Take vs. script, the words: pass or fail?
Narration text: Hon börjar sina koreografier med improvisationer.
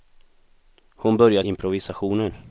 fail